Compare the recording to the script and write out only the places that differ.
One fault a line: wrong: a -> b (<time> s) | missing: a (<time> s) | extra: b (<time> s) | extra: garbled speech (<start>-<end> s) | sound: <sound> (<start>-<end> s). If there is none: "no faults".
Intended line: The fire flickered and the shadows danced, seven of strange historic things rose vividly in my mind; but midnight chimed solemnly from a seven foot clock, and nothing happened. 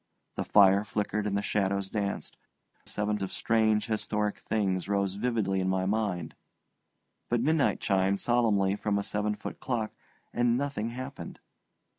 no faults